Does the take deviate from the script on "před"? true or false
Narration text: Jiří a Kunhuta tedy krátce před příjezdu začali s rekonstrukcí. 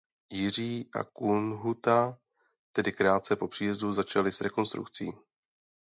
true